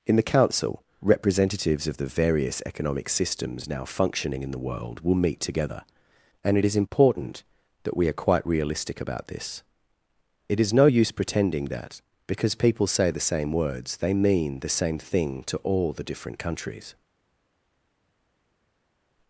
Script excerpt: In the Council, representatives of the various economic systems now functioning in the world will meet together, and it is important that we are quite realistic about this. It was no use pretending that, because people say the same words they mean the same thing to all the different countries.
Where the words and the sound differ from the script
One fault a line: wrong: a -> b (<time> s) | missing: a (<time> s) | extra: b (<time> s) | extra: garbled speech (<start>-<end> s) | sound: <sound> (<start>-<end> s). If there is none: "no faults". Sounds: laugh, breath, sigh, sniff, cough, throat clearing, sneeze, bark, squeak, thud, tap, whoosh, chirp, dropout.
wrong: was -> is (10.6 s)